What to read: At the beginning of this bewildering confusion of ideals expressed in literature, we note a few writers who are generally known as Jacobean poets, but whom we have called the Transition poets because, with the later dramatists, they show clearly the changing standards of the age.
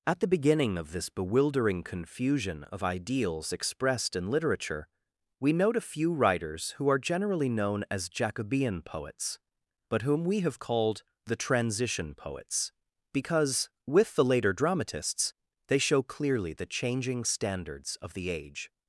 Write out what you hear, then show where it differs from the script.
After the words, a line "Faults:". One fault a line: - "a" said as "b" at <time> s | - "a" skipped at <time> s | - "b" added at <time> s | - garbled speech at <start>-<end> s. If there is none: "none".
At the beginning of this bewildering confusion of ideals expressed in literature, we note a few writers who are generally known as Jacobean poets, but whom we have called the Transition poets because, with the later dramatists, they show clearly the changing standards of the age.
Faults:
none